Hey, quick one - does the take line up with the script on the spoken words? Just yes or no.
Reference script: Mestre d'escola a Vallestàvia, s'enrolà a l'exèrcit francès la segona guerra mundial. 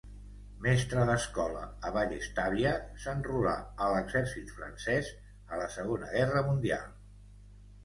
no